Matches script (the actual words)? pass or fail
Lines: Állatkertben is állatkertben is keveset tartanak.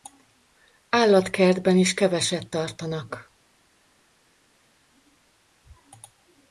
fail